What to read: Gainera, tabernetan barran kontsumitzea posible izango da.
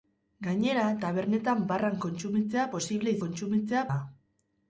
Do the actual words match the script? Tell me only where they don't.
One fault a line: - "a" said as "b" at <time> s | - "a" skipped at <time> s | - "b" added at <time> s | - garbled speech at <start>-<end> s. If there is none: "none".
- "izango" said as "kontsumitzea" at 3.3 s